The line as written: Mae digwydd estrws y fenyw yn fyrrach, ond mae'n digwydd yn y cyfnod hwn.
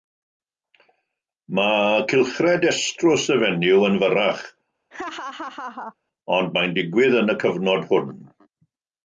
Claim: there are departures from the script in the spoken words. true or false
true